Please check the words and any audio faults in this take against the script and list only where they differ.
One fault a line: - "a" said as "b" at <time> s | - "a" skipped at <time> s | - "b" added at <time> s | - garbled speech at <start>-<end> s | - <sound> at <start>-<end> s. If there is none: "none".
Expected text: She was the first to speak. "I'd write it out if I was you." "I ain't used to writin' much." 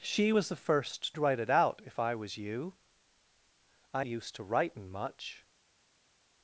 - "to speak I'd" skipped at 1.2 s
- "ain't" skipped at 4.0 s